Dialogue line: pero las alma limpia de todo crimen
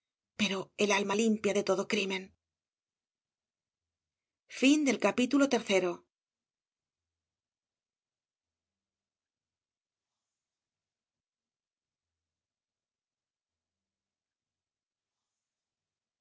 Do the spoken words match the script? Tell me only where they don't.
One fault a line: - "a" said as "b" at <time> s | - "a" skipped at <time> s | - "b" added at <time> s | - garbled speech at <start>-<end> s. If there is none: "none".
- "las" said as "el" at 0.8 s